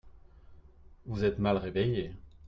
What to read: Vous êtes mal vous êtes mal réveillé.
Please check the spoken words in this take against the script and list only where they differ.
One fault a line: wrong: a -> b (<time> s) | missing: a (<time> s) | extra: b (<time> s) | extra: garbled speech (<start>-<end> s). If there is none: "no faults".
missing: vous êtes mal (1.6 s)